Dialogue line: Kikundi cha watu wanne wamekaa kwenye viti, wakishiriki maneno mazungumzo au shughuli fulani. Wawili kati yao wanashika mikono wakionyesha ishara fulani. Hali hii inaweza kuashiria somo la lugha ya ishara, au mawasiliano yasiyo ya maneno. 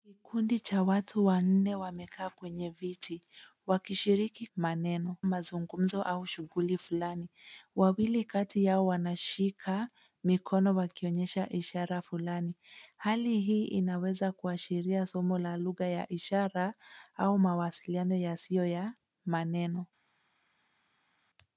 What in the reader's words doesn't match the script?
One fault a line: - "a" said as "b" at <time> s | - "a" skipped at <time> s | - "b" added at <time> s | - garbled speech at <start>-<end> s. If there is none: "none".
none